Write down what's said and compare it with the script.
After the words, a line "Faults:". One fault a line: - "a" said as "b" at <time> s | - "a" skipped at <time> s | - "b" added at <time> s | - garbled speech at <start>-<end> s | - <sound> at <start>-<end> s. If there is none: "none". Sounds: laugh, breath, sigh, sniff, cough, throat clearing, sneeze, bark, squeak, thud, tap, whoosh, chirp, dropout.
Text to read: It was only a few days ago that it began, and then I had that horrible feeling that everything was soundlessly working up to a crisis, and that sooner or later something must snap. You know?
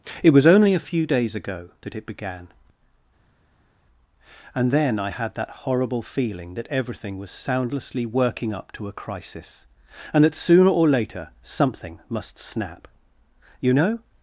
It was only a few days ago that it began, and then I had that horrible feeling that everything was soundlessly working up to a crisis, and that sooner or later something must snap. You know?
Faults:
none